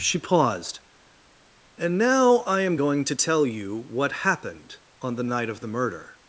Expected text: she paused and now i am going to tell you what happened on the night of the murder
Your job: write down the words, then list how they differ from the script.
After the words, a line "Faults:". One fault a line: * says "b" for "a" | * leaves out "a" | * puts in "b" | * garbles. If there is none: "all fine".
she paused and now i am going to tell you what happened on the night of the murder
Faults:
all fine